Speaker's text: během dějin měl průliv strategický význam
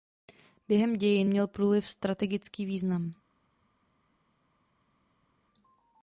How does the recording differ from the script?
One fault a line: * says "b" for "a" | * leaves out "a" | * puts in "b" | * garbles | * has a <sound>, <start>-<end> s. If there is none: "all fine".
all fine